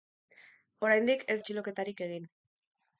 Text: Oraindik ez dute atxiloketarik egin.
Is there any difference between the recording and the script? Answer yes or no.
yes